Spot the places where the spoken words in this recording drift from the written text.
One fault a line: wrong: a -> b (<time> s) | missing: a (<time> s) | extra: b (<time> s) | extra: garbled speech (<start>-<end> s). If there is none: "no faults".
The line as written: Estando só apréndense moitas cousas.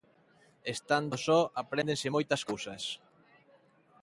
no faults